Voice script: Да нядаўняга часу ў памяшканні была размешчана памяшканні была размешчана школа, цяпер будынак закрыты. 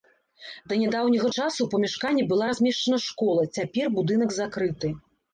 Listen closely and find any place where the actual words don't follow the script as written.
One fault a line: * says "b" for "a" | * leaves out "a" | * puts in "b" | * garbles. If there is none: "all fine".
* leaves out "памяшканні была размешчана"